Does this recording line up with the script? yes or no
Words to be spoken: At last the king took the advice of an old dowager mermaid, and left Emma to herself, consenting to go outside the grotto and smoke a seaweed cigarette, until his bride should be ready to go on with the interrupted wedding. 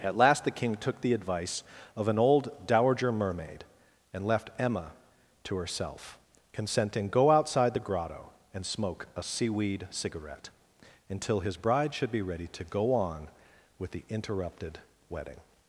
no